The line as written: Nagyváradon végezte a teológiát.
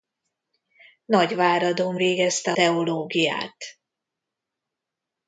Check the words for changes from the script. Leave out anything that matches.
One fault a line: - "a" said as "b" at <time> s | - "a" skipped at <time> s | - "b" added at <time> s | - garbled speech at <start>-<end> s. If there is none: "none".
- "a" skipped at 2.5 s